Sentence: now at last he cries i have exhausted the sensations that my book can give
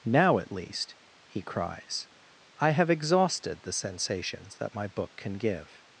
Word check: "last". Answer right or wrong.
wrong